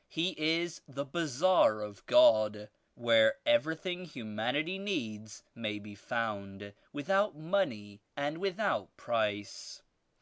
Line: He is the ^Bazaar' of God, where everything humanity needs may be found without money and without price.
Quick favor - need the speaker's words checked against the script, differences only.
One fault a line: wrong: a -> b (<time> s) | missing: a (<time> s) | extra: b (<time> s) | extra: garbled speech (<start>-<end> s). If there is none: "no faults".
no faults